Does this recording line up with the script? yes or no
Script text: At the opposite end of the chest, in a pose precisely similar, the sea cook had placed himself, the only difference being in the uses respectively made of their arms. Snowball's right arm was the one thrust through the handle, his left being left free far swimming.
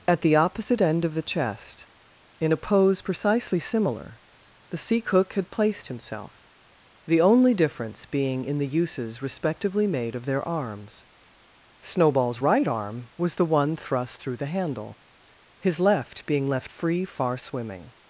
yes